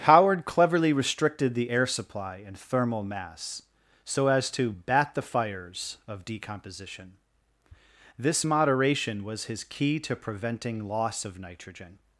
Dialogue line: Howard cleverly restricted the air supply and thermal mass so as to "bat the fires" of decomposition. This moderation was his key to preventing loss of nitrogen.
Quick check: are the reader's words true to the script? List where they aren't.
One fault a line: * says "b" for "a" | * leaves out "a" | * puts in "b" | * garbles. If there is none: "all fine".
all fine